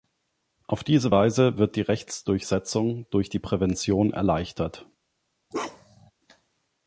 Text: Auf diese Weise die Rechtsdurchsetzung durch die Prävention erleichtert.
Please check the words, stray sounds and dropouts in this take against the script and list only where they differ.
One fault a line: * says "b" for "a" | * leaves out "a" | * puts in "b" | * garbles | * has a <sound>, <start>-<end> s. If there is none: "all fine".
* puts in "wird"
* has a bark, 5.5-6.1 s